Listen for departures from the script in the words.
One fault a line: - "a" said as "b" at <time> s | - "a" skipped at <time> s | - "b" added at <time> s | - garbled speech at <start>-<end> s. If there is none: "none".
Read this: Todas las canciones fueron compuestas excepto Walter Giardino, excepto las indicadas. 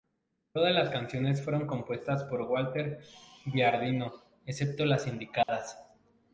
- "excepto" said as "por" at 2.2 s